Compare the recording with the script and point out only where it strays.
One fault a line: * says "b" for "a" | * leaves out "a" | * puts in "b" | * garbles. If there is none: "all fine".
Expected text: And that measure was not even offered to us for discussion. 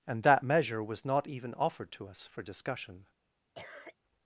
all fine